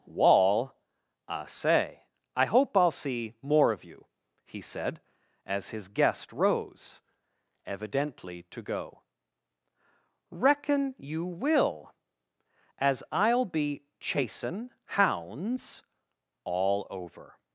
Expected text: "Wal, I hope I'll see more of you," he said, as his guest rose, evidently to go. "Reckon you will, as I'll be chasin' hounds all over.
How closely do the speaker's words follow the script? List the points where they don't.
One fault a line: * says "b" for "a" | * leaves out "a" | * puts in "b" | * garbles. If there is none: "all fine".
* says "Wall I say" for "Wal"